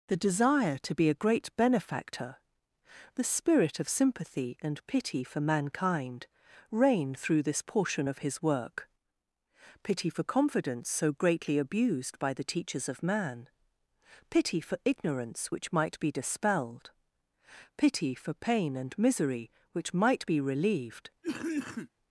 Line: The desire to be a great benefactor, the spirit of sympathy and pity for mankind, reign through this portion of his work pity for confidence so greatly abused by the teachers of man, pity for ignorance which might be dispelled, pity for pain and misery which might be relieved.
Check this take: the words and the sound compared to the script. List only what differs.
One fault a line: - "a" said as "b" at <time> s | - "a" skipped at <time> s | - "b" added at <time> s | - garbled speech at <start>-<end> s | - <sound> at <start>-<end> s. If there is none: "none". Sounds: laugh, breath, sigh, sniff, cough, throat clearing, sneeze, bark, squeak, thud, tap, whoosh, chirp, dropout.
- cough at 21.2-21.9 s